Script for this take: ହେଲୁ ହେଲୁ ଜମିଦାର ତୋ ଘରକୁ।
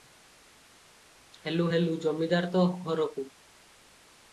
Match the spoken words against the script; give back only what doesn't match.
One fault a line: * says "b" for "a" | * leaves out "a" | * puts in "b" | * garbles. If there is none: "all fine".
all fine